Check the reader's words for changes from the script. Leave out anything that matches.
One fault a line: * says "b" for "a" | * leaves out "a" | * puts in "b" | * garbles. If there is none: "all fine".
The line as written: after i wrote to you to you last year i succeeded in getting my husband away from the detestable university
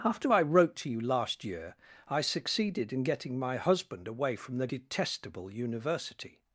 * leaves out "to you"